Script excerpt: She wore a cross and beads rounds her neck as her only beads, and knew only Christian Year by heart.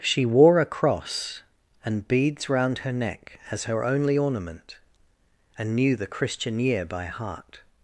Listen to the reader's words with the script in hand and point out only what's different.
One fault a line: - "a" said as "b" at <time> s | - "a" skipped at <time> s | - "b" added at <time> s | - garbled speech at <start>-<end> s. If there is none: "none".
- "rounds" said as "round" at 2.5 s
- "beads" said as "ornament" at 4.2 s
- "only" said as "the" at 6.0 s